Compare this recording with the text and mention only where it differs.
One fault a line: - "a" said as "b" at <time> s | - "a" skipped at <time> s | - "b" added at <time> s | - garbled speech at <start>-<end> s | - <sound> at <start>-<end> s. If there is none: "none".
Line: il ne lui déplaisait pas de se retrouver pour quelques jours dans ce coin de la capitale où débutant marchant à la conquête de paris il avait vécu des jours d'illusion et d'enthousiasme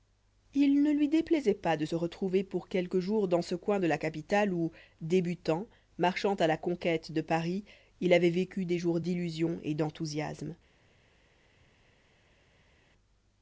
none